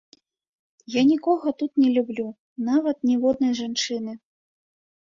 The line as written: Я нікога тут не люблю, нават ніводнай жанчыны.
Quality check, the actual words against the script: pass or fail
pass